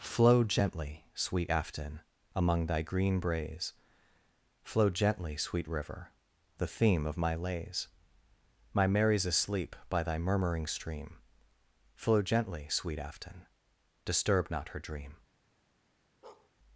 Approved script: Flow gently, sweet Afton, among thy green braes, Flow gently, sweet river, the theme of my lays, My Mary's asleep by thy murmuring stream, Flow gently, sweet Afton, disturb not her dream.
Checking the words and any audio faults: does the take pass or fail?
fail